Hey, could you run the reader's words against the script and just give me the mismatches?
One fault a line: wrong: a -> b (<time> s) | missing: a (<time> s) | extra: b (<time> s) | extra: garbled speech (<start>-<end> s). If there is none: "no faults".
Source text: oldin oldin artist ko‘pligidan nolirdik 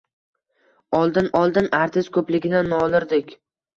no faults